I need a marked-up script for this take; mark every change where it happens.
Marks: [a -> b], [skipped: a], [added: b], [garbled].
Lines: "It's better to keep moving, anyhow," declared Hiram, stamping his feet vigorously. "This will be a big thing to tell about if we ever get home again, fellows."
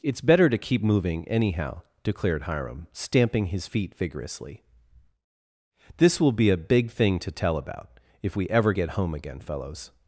"It's better to keep moving, anyhow," declared Hiram, stamping his feet vigorously. "This will be a big thing to tell about if we ever get home again, fellows."